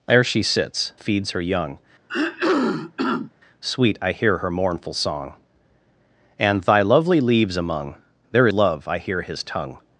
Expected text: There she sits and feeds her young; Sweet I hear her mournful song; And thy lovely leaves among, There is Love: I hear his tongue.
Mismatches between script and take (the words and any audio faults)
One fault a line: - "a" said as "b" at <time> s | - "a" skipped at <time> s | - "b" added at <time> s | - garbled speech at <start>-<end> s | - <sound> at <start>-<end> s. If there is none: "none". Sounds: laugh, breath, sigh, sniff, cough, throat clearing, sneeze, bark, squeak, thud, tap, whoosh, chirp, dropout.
- "and" skipped at 0.9 s
- throat clearing at 2.1-3.3 s
- "is" skipped at 8.5 s